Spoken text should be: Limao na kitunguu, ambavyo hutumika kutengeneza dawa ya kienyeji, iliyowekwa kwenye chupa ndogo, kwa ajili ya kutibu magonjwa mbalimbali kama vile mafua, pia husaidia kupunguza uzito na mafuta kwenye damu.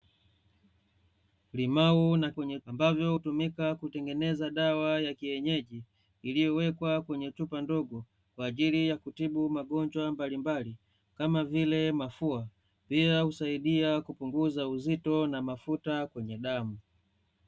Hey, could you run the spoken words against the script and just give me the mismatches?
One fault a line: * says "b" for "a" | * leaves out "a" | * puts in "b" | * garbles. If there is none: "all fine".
* says "kwenye" for "kitunguu"